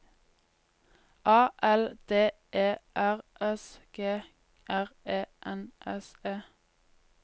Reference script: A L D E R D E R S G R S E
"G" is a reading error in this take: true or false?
true